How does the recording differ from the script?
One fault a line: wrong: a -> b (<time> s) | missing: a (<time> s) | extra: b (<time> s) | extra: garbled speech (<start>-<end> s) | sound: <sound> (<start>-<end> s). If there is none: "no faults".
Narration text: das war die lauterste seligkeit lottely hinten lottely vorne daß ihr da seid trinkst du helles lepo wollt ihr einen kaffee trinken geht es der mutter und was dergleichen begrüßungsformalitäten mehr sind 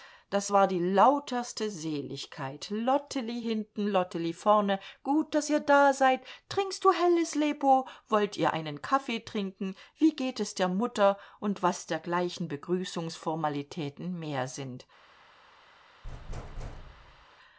extra: gut (5.0 s)
extra: wie (10.0 s)
sound: thud (16.0-17.3 s)